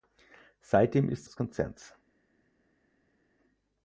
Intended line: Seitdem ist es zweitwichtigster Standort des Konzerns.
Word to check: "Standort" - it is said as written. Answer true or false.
false